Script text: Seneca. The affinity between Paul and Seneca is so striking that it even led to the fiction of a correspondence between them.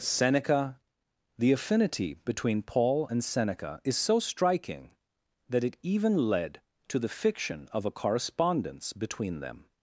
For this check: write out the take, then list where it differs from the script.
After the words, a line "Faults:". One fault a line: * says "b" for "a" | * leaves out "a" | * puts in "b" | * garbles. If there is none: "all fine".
Seneca. The affinity between Paul and Seneca is so striking that it even led to the fiction of a correspondence between them.
Faults:
all fine